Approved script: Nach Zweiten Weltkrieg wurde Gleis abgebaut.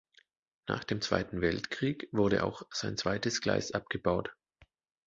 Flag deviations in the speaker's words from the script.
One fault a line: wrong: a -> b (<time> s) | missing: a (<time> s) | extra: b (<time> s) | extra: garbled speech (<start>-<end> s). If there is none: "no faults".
extra: dem (0.8 s)
extra: auch sein zweites (2.4 s)